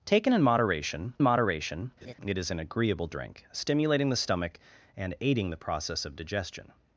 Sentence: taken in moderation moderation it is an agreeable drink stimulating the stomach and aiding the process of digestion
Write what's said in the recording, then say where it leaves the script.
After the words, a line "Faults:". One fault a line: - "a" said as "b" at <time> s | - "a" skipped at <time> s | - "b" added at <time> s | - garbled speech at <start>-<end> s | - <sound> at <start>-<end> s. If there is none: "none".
taken in moderation moderation it is an agreeable drink stimulating the stomach and aiding the process of digestion
Faults:
- laugh at 2.0-2.1 s